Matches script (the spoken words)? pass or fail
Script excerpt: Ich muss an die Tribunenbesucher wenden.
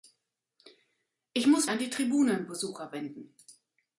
pass